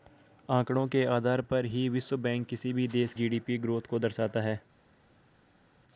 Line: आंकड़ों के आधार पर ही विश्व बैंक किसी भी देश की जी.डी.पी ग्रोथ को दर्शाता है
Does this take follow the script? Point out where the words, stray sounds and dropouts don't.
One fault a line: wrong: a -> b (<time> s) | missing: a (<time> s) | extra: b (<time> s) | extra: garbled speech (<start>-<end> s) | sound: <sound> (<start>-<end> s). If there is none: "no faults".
missing: की (3.1 s)